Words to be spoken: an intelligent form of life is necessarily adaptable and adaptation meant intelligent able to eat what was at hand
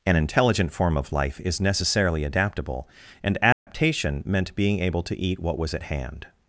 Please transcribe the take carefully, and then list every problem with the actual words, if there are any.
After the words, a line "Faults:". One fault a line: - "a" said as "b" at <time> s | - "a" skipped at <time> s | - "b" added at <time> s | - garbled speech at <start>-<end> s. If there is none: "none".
an intelligent form of life is necessarily adaptable and adaptation meant being able to eat what was at hand
Faults:
- "intelligent" said as "being" at 4.5 s